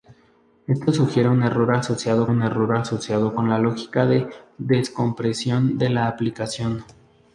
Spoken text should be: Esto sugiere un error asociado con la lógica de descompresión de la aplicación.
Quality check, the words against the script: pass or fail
fail